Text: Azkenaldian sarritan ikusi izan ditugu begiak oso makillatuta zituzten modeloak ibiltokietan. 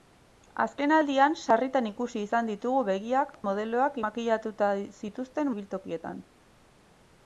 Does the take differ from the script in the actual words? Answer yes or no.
yes